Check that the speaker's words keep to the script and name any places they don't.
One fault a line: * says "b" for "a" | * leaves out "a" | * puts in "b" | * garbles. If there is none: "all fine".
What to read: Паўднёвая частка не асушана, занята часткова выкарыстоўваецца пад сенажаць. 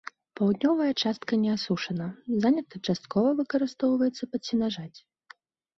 all fine